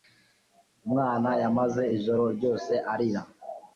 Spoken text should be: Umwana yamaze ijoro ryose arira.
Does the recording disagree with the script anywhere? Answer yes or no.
no